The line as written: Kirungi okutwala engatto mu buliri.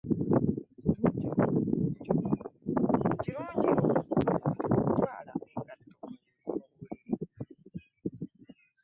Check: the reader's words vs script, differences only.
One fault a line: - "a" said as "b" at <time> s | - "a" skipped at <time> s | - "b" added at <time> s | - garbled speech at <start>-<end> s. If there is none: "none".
none